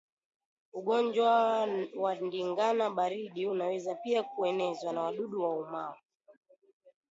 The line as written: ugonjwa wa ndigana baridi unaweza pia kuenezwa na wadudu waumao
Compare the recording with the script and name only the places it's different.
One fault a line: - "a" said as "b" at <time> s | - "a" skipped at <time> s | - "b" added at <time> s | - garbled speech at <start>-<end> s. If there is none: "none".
none